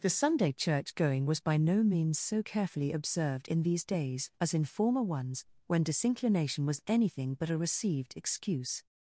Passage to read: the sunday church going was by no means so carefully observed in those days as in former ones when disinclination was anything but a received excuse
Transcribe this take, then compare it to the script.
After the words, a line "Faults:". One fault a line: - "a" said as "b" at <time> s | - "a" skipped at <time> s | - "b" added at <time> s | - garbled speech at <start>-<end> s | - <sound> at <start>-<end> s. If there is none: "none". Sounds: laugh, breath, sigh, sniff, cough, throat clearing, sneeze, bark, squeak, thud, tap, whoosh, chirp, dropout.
the sunday church going was by no means so carefully observed in these days as in former ones when disinclination was anything but a received excuse
Faults:
- "those" said as "these" at 3.6 s